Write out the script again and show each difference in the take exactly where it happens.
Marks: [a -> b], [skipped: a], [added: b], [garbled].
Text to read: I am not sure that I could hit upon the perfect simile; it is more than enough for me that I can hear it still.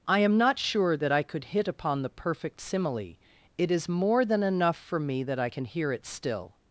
I am not sure that I could hit upon the perfect simile; it is more than enough for me that I can hear it still.